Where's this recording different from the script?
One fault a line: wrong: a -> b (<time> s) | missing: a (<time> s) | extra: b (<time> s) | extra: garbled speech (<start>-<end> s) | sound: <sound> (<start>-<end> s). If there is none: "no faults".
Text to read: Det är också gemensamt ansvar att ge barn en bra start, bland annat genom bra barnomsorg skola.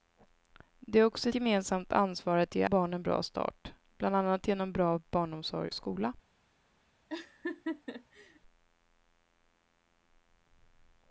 sound: laugh (7.1-8.4 s)